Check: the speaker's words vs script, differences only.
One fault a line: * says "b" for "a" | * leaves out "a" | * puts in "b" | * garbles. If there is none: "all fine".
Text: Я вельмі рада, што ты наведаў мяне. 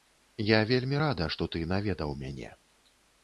all fine